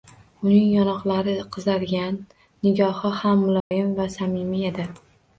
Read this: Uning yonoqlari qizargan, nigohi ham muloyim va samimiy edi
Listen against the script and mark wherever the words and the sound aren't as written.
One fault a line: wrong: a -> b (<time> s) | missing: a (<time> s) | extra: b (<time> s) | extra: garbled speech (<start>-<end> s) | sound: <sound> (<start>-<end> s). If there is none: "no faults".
sound: dropout (3.6-3.7 s)